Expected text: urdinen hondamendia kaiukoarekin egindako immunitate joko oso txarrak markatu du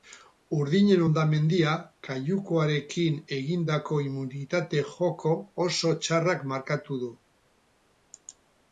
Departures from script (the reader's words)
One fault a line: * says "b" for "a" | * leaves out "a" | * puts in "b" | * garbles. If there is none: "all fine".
all fine